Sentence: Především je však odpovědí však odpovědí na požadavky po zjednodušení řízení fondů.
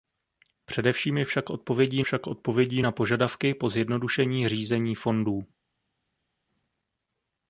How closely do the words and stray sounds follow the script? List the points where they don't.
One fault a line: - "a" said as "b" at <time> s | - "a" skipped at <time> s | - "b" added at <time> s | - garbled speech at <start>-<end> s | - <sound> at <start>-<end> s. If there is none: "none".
none